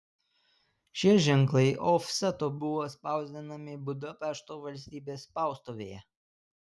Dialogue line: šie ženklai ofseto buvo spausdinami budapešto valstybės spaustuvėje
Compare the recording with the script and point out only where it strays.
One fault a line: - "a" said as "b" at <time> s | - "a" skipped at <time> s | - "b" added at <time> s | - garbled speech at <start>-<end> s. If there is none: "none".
none